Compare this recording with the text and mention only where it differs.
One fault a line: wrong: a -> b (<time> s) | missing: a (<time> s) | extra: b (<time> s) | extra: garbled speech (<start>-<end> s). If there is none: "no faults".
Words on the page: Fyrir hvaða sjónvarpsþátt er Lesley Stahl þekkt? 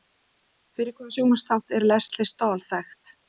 no faults